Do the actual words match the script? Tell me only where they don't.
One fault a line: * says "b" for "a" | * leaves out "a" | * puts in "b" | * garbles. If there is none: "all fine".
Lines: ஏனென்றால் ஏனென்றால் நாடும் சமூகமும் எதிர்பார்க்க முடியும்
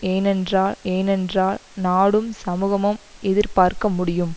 all fine